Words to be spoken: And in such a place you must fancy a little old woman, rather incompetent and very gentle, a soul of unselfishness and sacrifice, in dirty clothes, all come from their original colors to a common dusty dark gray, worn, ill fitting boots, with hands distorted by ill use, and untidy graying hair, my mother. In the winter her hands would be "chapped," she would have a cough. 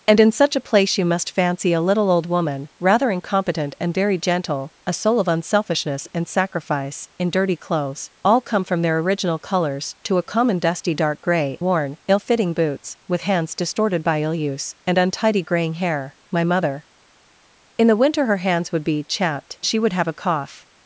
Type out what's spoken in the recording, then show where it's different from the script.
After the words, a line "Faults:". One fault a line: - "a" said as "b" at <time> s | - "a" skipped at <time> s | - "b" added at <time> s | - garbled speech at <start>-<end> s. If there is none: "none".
And in such a place you must fancy a little old woman, rather incompetent and very gentle, a soul of unselfishness and sacrifice, in dirty clothes, all come from their original colors to a common dusty dark gray, worn, ill fitting boots, with hands distorted by ill use, and untidy graying hair, my mother. In the winter her hands would be "chapped," she would have a cough.
Faults:
none